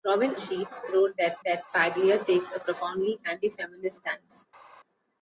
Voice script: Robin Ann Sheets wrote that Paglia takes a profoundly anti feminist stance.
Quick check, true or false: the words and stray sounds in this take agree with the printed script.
false